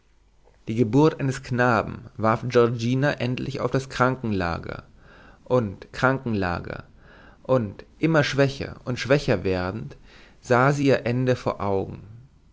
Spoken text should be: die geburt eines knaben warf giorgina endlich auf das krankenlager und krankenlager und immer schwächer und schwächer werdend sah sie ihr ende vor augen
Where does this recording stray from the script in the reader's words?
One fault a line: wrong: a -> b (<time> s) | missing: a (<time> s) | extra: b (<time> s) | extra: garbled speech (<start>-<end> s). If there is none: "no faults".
no faults